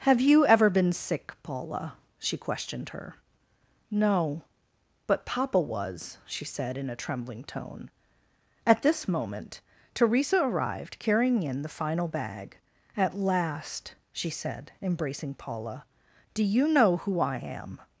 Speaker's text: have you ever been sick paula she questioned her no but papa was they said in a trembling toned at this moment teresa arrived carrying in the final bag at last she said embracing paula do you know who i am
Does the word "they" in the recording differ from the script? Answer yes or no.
yes